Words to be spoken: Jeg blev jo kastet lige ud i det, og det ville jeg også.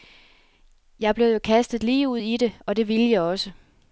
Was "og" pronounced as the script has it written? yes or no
yes